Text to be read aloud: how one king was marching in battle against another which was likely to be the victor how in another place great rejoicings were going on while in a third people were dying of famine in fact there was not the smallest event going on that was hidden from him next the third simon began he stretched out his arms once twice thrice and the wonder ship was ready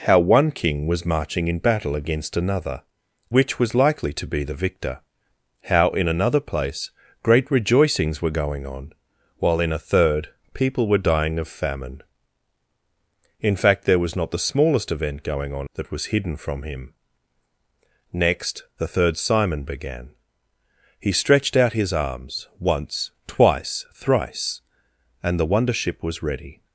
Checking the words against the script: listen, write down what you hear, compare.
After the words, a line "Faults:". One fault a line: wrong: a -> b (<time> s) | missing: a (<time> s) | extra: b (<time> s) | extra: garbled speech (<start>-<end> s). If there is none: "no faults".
how one king was marching in battle against another which was likely to be the victor how in another place great rejoicings were going on while in a third people were dying of famine in fact there was not the smallest event going on that was hidden from him next the third simon began he stretched out his arms once twice thrice and the wonder ship was ready
Faults:
no faults